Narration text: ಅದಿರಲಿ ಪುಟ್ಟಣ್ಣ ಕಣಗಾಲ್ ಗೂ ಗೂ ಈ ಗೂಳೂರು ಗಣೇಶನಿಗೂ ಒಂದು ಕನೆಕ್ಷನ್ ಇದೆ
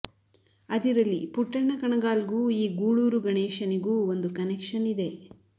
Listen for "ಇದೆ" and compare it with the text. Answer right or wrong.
right